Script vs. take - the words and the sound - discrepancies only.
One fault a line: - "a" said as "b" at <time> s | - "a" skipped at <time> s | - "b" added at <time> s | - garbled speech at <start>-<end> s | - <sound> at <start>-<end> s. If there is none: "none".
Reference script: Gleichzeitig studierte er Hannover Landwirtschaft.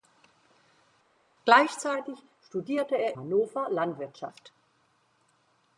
none